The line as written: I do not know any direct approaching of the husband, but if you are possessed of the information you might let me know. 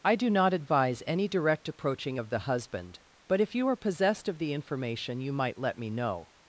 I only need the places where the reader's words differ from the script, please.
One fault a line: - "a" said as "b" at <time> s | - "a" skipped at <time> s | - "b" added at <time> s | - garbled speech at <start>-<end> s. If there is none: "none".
- "know" said as "advise" at 0.5 s